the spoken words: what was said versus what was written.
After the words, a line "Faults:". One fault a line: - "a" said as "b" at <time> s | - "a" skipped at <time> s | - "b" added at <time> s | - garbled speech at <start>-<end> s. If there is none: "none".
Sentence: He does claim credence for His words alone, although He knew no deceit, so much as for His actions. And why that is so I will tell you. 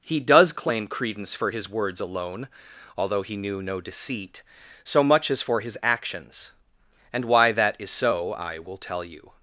He does claim credence for His words alone, although He knew no deceit, so much as for His actions. And why that is so I will tell you.
Faults:
none